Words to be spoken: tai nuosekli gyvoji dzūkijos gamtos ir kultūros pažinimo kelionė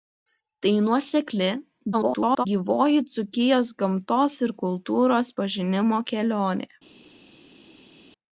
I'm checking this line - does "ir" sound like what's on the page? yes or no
yes